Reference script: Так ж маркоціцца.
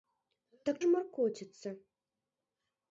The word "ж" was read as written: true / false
true